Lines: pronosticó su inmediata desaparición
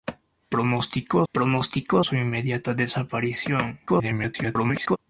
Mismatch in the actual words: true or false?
true